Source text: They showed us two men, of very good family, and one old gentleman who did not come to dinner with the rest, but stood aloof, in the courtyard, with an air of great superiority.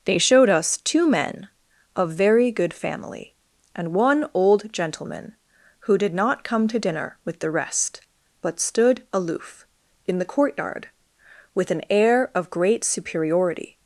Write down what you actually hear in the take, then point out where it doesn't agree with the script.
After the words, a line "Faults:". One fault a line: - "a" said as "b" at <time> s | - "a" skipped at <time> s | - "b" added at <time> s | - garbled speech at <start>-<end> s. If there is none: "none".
They showed us two men, of very good family, and one old gentleman who did not come to dinner with the rest, but stood aloof, in the courtyard, with an air of great superiority.
Faults:
none